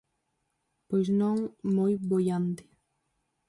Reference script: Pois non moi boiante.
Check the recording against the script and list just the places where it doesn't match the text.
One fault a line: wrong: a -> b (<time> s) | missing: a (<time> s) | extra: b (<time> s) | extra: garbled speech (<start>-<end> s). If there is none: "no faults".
no faults